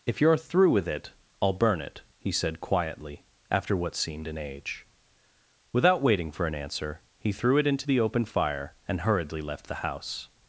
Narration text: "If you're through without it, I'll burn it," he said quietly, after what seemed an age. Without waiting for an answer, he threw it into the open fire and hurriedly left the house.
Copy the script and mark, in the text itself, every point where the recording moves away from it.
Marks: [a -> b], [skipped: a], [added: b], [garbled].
"If you're through [without -> with] it, I'll burn it," he said quietly, after what seemed an age. Without waiting for an answer, he threw it into the open fire and hurriedly left the house.